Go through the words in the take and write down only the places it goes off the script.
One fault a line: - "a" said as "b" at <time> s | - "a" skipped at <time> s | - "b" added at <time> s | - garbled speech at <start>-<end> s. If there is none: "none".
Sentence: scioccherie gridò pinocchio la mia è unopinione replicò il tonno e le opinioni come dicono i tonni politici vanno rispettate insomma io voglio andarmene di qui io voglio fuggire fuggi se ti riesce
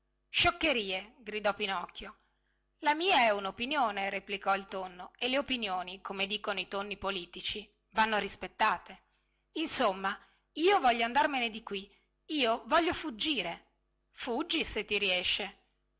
none